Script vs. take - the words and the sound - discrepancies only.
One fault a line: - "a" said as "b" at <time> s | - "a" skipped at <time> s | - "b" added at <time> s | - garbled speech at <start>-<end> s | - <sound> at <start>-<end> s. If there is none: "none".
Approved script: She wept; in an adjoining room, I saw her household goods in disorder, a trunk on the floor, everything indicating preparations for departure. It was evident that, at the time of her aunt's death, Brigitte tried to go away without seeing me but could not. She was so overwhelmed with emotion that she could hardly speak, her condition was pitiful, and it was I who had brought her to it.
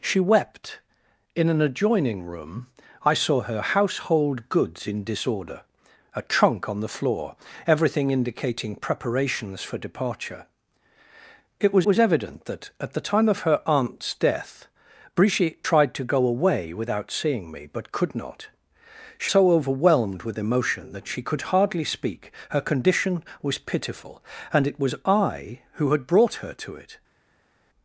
- "was" added at 11.8 s
- "was" skipped at 19.3 s